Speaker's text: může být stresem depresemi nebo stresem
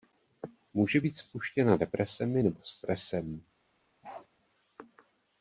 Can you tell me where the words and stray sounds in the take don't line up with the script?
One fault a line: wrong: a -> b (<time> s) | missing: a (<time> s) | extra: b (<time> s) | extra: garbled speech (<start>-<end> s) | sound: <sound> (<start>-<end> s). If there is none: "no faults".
wrong: stresem -> spuštěna (1.2 s)
sound: bark (4.0-4.3 s)